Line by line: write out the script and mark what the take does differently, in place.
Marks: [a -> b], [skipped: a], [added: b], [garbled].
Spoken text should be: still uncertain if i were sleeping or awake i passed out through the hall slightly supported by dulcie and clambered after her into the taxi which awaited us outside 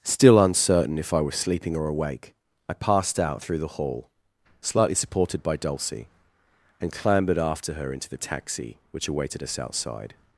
still uncertain if i [were -> was] sleeping or awake i passed out through the hall slightly supported by dulcie and clambered after her into the taxi which awaited us outside